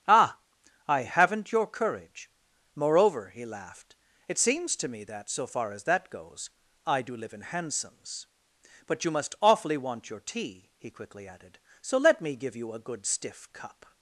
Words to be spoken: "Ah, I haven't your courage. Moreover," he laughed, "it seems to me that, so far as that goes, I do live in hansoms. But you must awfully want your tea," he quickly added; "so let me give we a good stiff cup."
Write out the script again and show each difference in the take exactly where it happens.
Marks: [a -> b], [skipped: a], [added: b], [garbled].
"Ah, I haven't your courage. Moreover," he laughed, "it seems to me that, so far as that goes, I do live in hansoms. But you must awfully want your tea," he quickly added; "so let me give [we -> you] a good stiff cup."